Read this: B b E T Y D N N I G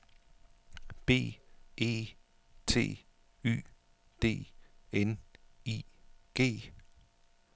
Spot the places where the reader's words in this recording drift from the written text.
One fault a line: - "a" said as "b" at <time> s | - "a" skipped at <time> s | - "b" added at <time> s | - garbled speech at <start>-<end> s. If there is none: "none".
- "b" skipped at 1.4 s
- "N" skipped at 5.2 s